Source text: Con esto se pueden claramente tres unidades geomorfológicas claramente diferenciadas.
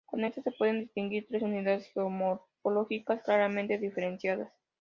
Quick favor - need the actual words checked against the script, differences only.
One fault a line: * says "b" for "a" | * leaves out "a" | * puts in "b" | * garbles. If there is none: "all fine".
* says "distinguir" for "claramente"